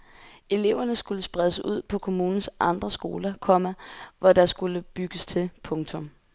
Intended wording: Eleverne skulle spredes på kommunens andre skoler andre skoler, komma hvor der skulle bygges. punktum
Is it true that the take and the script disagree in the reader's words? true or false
true